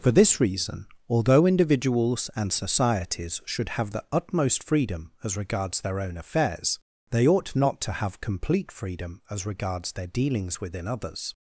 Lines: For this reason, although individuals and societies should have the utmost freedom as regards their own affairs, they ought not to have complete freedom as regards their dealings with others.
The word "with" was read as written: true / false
false